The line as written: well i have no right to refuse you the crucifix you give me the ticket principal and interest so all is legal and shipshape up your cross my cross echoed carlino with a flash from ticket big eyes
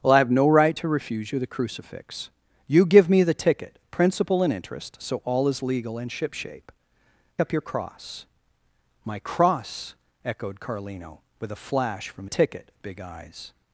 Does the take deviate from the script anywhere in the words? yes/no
no